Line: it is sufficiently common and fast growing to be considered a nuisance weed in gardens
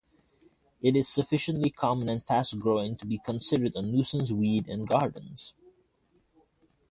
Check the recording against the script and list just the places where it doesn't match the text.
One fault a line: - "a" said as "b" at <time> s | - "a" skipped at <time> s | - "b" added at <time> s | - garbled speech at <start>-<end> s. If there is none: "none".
none